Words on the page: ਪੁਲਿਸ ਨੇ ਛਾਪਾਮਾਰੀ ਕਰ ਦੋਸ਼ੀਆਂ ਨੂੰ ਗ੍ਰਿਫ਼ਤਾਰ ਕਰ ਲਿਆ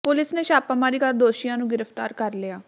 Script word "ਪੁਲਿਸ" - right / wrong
right